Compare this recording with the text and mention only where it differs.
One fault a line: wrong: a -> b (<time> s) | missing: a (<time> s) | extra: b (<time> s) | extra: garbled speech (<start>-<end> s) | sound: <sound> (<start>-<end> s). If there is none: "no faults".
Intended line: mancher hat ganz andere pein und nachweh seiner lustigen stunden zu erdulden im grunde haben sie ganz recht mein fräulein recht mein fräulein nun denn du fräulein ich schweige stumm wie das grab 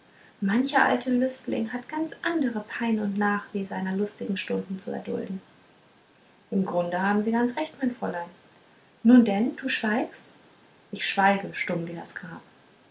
extra: alte lüstling (0.8 s)
missing: recht mein fräulein (8.3 s)
wrong: fräulein -> schweigst (9.7 s)